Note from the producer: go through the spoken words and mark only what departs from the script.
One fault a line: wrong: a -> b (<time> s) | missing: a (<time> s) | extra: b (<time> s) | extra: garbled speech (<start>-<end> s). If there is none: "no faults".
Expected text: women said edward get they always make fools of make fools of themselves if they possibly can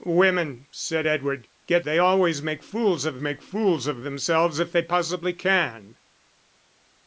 no faults